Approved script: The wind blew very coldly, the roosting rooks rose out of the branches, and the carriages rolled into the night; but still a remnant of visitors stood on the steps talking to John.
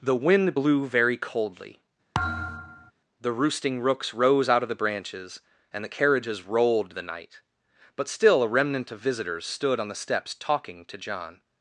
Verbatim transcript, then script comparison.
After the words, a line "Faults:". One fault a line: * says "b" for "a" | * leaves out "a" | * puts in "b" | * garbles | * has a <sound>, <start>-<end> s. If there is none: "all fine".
The wind blew very coldly, the roosting rooks rose out of the branches, and the carriages rolled the night; but still a remnant of visitors stood on the steps talking to John.
Faults:
* has a thud, 2.1-2.9 s
* leaves out "into"